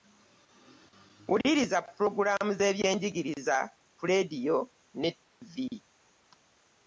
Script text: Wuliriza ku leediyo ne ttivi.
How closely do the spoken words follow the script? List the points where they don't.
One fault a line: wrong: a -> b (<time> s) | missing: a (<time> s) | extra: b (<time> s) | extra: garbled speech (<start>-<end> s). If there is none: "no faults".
extra: pulogulaamu z'ebyenjigiriza (1.9 s)